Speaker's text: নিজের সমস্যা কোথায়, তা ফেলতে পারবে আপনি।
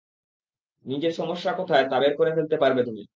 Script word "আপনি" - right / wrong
wrong